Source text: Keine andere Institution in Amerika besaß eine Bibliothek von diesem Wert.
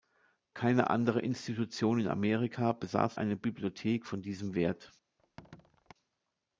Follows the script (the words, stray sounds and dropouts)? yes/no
no